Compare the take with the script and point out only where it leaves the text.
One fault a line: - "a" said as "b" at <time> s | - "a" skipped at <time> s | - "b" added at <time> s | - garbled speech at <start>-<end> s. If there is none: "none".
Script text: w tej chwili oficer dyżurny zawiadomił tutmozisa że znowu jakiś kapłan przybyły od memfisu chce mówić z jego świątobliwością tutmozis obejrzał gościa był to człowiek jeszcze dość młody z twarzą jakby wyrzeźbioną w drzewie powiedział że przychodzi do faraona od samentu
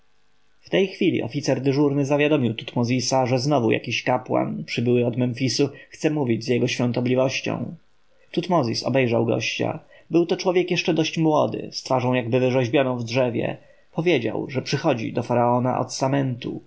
none